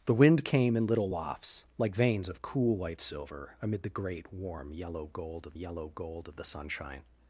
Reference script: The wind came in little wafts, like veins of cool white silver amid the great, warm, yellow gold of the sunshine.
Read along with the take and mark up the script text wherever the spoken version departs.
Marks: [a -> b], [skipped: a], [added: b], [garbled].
The wind came in little wafts, like veins of cool white silver amid the great, warm, yellow gold of [added: yellow gold of] the sunshine.